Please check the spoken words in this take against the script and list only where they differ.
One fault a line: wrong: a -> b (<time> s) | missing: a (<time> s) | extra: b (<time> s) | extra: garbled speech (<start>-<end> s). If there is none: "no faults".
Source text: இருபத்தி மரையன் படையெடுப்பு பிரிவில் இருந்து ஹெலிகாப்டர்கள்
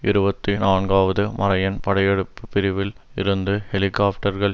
extra: நான்காவது (0.6 s)